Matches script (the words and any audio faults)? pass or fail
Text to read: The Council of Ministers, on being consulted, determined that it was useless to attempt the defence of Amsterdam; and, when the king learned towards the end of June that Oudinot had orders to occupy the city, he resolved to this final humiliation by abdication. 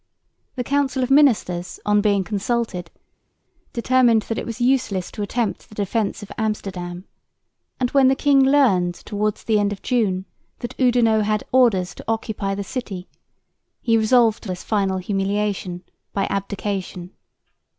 pass